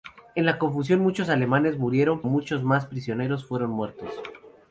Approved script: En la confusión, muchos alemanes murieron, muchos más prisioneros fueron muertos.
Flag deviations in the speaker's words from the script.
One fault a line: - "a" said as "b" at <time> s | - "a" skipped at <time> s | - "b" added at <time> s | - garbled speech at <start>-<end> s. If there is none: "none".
none